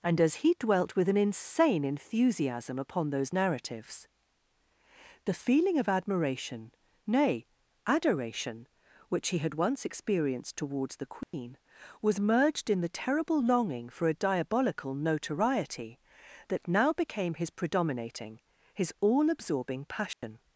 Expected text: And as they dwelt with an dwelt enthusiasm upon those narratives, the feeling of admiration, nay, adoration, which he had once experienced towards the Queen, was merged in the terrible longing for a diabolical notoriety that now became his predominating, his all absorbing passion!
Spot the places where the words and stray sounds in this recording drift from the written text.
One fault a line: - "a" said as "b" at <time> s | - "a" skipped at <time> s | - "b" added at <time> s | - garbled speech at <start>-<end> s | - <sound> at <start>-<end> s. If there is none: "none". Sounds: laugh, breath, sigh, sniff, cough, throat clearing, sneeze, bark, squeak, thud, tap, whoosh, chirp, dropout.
- "they" said as "he" at 0.4 s
- "dwelt" said as "insane" at 1.2 s
- dropout at 11.2-11.3 s
- dropout at 20.1-20.2 s